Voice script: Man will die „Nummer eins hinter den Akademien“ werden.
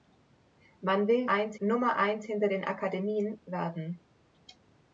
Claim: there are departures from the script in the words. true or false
true